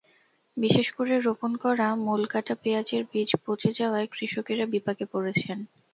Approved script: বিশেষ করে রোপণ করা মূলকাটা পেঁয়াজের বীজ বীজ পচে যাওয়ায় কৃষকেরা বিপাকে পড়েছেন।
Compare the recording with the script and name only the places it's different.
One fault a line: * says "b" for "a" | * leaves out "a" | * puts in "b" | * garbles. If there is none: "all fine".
* leaves out "বীজ"